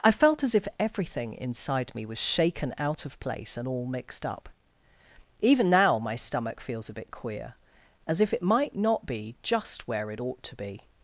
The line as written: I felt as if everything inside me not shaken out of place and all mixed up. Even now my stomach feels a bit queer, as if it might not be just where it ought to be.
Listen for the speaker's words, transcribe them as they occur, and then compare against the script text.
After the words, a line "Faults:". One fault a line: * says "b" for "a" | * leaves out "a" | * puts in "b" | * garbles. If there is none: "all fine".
I felt as if everything inside me was shaken out of place and all mixed up. Even now my stomach feels a bit queer, as if it might not be just where it ought to be.
Faults:
* says "was" for "not"